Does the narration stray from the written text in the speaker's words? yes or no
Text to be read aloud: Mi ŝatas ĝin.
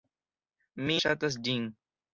no